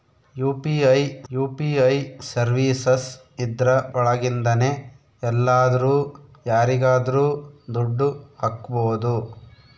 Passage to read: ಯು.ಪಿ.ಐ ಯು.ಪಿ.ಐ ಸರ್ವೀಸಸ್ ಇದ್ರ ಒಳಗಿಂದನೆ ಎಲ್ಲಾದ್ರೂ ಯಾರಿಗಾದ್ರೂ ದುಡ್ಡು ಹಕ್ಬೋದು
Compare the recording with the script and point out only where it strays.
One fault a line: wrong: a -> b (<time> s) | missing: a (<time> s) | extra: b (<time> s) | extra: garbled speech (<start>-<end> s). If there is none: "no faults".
no faults